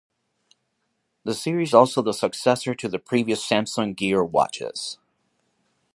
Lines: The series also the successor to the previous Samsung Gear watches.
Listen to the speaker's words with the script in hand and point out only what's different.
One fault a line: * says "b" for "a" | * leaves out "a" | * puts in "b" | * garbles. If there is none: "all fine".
all fine